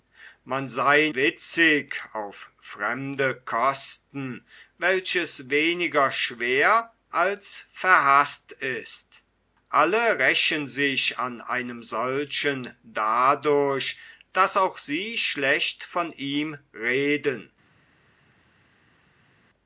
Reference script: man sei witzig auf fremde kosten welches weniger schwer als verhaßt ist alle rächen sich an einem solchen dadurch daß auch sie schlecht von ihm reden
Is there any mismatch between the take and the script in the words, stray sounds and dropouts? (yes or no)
no